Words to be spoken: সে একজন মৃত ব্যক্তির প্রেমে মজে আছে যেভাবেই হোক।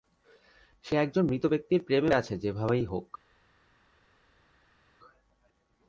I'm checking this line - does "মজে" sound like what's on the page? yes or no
no